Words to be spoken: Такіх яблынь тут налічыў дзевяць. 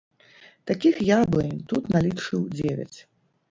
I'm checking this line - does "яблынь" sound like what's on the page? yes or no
yes